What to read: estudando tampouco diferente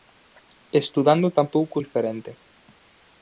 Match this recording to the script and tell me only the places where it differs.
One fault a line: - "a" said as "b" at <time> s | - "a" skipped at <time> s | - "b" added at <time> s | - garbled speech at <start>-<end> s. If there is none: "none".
none